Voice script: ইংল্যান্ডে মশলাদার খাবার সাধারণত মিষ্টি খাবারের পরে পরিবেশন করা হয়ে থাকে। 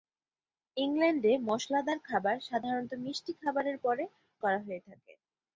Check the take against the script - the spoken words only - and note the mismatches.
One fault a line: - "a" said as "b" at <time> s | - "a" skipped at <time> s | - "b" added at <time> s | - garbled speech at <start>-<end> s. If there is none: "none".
- "পরিবেশন" skipped at 4.0 s